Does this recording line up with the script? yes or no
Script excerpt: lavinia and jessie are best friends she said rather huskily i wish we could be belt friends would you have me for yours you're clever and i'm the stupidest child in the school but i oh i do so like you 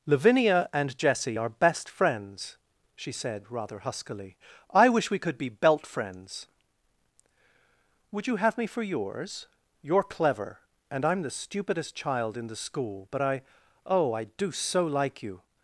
yes